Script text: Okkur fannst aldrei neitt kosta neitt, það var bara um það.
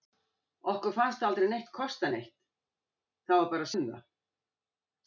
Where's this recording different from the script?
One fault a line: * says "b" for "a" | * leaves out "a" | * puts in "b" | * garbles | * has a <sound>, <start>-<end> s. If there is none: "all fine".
all fine